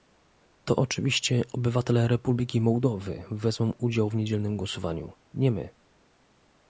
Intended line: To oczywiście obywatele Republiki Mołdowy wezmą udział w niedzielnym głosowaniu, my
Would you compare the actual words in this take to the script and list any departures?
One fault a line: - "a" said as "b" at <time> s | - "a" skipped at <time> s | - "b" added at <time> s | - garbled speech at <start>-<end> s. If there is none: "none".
- "nie" added at 5.3 s